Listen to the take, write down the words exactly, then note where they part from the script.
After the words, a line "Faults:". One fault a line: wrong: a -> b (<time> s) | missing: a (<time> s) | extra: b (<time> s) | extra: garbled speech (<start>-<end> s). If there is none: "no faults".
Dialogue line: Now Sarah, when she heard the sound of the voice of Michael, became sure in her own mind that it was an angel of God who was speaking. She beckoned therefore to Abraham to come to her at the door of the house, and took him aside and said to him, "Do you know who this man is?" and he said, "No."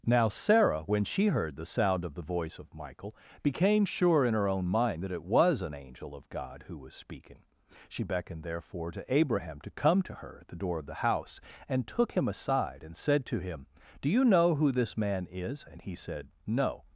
Now Sarah, when she heard the sound of the voice of Michael, became sure in her own mind that it was an angel of God who was speaking. She beckoned therefore to Abraham to come to her at the door of the house, and took him aside and said to him, "Do you know who this man is?" and he said, "No."
Faults:
no faults